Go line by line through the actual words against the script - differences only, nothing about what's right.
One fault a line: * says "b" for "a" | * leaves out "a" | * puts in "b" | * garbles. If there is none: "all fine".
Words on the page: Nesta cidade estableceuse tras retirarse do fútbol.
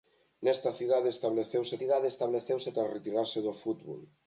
* puts in "cidade estableceuse"